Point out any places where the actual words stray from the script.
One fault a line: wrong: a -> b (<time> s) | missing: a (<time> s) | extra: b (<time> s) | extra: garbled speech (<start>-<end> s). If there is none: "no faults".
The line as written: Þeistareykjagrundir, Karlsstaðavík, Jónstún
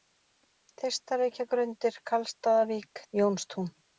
no faults